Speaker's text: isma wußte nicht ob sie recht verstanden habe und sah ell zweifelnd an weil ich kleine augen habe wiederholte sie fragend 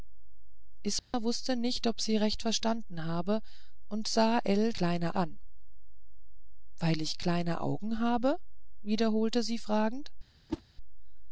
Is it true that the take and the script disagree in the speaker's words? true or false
true